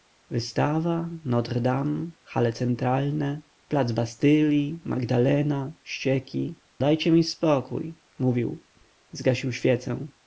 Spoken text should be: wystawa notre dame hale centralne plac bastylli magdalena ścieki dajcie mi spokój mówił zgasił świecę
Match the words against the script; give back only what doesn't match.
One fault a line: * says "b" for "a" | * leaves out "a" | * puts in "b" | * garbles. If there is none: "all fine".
all fine